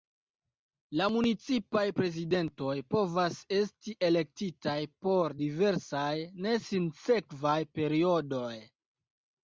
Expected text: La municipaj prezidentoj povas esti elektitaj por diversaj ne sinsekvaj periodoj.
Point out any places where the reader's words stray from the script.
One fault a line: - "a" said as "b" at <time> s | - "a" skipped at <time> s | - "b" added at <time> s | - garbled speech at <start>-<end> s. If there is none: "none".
none